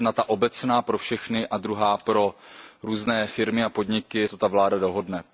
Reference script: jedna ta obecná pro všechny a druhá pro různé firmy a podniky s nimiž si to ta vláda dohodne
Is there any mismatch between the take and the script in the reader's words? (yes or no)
yes